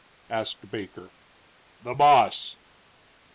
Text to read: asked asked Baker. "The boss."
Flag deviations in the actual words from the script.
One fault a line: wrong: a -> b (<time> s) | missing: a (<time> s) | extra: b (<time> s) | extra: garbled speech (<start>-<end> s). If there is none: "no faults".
missing: asked (0.7 s)